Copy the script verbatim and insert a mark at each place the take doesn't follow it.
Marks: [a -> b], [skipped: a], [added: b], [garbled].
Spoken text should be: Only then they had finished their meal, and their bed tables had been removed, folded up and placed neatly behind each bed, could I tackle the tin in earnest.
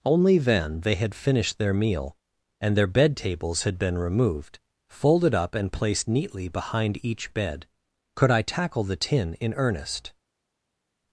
Only then they had finished their meal, and their bed tables had been removed, folded up and placed neatly behind each bed, could I tackle the tin in earnest.